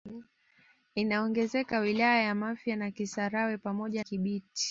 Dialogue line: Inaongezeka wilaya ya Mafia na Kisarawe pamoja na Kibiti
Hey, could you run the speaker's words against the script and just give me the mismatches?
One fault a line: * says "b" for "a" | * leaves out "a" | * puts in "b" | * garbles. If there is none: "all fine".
* leaves out "na"